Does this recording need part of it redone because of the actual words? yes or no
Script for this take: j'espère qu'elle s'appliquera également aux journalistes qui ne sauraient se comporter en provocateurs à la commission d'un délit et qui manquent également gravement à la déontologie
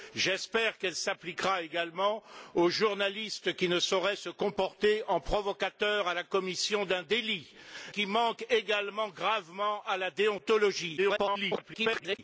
yes